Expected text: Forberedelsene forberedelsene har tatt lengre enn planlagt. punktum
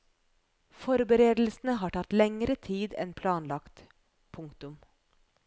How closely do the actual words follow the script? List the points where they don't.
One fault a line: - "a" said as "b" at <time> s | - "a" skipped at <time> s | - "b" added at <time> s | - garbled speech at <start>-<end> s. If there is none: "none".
- "forberedelsene" skipped at 1.8 s
- "tid" added at 2.7 s